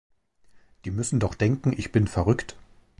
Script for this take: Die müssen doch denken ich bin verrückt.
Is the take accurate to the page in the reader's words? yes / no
yes